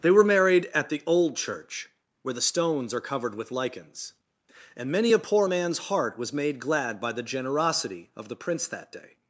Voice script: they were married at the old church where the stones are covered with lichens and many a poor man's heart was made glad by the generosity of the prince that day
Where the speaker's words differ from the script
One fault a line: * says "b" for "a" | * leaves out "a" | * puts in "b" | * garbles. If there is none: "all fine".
all fine